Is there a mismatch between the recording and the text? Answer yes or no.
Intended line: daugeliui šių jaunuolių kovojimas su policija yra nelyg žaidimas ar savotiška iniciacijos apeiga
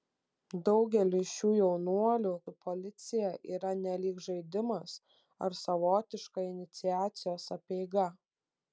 yes